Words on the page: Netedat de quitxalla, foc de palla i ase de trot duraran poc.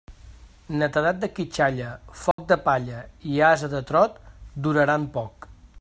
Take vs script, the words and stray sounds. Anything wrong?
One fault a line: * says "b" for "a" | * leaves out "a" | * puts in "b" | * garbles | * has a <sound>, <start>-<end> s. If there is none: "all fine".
* has a dropout, 2.3-2.4 s